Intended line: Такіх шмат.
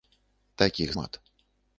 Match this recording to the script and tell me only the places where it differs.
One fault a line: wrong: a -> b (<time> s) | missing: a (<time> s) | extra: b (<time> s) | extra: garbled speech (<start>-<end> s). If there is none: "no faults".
no faults